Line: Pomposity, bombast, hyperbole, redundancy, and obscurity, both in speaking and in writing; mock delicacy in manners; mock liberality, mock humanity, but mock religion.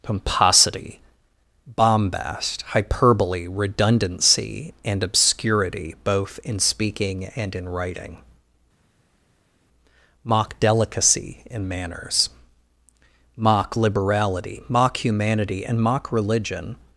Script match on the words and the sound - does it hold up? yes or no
no